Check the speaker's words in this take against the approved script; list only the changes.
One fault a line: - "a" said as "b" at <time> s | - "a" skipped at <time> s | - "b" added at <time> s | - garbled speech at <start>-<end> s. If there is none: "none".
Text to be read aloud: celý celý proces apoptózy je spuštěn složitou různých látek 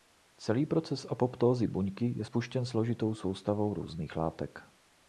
- "celý" skipped at 0.7 s
- "buňky" added at 1.7 s
- "soustavou" added at 3.1 s